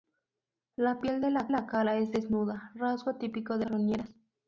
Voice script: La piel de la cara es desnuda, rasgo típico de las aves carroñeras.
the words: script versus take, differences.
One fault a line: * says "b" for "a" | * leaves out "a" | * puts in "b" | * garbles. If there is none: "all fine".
* puts in "la"
* leaves out "las aves"